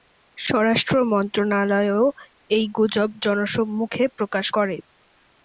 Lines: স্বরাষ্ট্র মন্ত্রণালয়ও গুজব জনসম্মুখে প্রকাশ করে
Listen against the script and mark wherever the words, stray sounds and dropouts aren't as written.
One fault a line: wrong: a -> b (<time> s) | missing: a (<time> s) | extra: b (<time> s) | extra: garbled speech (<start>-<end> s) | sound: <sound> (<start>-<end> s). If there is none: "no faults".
extra: এই (2.5 s)